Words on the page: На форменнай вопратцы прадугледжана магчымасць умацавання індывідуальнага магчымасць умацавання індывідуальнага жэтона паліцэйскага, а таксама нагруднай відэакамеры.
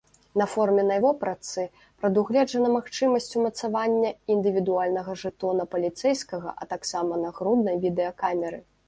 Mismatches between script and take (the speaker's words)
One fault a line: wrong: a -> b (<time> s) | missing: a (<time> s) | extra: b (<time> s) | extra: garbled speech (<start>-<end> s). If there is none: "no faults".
missing: магчымасць умацавання індывідуальнага (5.2 s)